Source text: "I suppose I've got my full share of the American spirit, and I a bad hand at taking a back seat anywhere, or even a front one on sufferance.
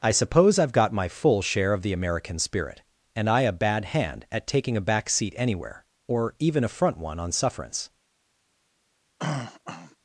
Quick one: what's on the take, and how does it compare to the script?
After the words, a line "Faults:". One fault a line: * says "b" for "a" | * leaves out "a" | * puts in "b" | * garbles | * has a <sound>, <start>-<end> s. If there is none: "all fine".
"I suppose I've got my full share of the American spirit, and I a bad hand at taking a back seat anywhere, or even a front one on sufferance.
Faults:
* has a throat clearing, 9.2-10.0 s